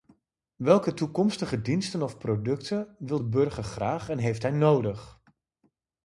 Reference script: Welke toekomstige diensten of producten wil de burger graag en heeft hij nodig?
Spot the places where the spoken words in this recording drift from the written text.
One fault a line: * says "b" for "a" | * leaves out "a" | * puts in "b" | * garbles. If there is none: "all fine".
all fine